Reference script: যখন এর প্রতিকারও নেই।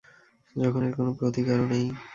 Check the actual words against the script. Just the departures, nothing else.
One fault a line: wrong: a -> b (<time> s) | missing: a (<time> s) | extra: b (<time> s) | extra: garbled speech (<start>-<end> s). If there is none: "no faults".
extra: কোন (1.0 s)